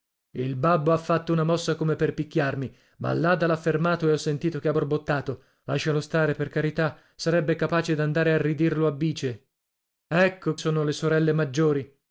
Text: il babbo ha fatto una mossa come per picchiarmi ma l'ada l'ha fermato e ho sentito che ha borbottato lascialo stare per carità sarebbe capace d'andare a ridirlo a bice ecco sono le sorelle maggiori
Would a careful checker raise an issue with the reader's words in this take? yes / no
no